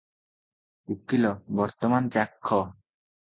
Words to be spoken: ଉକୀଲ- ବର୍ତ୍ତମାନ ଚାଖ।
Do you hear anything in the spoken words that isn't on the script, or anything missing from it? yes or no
no